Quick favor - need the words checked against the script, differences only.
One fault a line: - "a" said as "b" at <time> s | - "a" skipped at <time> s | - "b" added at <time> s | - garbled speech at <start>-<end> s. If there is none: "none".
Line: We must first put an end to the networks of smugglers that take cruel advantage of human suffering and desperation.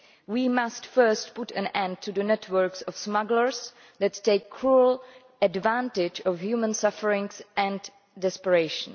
none